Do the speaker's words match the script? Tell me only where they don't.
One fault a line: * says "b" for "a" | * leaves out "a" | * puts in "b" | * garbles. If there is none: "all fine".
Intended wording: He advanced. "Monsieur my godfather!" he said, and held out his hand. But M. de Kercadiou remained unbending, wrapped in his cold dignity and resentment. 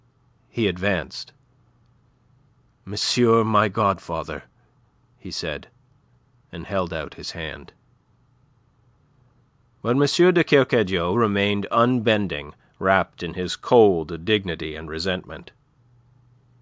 all fine